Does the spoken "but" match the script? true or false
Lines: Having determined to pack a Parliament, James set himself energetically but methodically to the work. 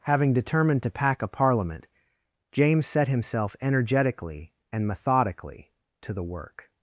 false